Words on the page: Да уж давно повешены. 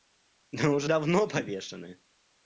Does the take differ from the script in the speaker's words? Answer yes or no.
no